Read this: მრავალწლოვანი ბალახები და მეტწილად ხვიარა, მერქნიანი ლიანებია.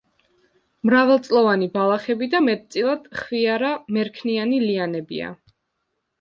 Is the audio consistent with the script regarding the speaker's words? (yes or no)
yes